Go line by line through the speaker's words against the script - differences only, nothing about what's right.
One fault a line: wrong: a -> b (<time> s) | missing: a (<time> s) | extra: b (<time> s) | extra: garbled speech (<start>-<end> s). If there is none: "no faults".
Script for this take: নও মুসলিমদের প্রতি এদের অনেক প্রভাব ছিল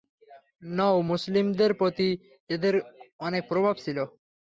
no faults